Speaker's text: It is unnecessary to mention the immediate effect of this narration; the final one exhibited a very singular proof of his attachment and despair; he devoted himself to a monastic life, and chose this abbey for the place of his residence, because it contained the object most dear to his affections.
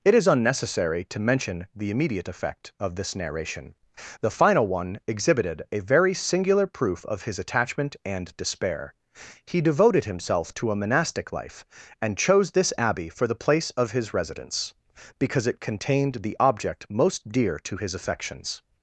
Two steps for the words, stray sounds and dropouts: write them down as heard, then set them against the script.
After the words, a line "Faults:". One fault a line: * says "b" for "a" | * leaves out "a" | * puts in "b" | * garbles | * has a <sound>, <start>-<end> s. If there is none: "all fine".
It is unnecessary to mention the immediate effect of this narration; the final one exhibited a very singular proof of his attachment and despair; he devoted himself to a monastic life, and chose this abbey for the place of his residence, because it contained the object most dear to his affections.
Faults:
all fine